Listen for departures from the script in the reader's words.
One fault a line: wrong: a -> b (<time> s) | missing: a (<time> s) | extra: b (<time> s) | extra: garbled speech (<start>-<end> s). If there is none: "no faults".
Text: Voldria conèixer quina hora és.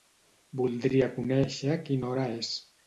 no faults